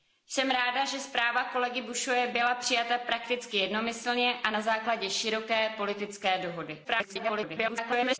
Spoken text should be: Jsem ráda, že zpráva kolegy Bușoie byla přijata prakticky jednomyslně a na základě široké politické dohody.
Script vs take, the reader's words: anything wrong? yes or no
yes